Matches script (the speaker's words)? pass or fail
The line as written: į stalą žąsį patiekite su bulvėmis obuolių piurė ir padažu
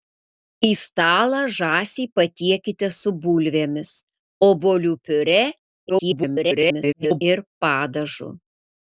fail